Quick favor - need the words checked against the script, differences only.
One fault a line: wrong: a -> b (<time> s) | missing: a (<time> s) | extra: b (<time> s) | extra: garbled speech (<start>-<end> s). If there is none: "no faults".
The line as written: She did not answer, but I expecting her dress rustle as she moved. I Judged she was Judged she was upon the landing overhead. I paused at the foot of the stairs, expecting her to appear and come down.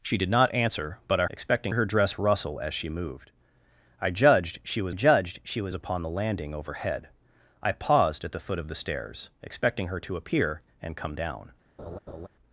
no faults